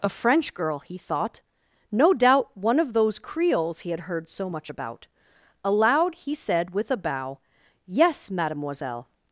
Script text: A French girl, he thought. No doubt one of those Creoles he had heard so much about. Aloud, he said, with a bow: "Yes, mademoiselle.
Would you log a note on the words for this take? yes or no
no